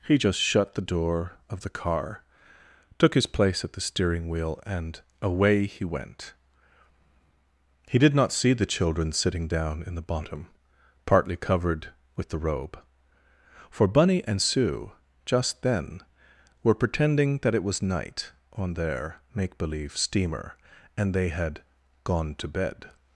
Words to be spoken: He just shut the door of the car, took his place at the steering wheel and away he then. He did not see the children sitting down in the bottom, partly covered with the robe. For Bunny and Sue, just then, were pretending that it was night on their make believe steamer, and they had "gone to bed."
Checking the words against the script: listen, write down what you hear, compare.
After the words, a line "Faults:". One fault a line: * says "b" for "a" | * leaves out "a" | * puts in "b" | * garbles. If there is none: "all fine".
He just shut the door of the car, took his place at the steering wheel and away he went. He did not see the children sitting down in the bottom, partly covered with the robe. For Bunny and Sue, just then, were pretending that it was night on their make believe steamer, and they had "gone to bed."
Faults:
* says "went" for "then"